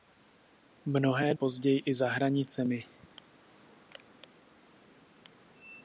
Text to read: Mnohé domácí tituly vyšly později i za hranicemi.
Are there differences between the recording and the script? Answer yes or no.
yes